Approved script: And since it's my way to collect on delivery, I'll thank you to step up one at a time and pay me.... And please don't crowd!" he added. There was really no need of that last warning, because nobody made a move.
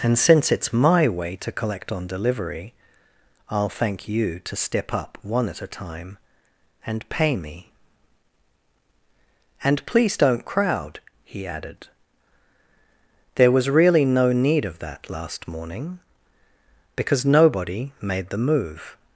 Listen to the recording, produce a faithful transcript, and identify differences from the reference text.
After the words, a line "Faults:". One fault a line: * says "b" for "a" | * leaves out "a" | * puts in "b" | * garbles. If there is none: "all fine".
And since it's my way to collect on delivery, I'll thank you to step up one at a time and pay me.... And please don't crowd!" he added. There was really no need of that last morning, because nobody made the move.
Faults:
* says "morning" for "warning"
* says "the" for "a"